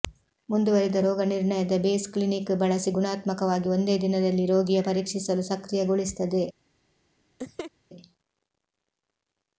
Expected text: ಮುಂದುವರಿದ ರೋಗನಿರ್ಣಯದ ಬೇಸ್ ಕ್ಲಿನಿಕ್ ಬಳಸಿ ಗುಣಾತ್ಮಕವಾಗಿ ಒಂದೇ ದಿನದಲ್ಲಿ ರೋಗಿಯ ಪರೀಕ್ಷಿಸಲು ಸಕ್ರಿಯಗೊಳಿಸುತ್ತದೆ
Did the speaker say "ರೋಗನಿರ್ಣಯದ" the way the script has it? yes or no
yes